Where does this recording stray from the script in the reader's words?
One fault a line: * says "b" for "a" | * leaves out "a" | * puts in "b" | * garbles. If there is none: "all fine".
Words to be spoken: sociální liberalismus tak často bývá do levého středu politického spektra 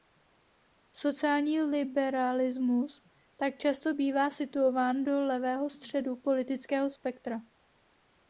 * puts in "situován"